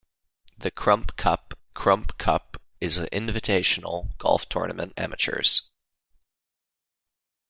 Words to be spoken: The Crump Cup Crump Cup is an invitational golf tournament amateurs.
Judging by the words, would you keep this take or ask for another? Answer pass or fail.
pass